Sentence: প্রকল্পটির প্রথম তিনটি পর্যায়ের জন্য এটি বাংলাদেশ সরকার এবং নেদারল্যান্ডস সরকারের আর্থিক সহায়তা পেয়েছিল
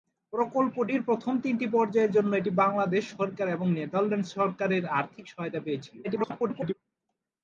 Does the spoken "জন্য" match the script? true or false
true